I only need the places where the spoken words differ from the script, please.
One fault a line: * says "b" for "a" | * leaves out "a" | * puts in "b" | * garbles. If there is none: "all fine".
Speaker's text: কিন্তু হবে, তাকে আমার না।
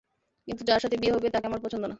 * puts in "যার সাথে বিয়ে"
* puts in "পছন্দ"